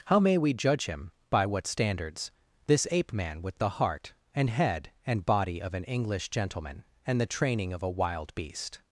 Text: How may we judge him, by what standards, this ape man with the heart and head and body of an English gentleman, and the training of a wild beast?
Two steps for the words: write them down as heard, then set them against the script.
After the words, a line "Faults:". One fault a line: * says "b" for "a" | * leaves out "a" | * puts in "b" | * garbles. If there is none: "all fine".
How may we judge him, by what standards, this ape man with the heart and head and body of an English gentleman, and the training of a wild beast?
Faults:
all fine